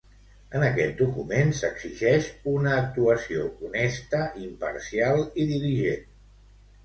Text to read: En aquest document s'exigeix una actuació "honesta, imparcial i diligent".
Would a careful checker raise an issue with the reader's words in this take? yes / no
no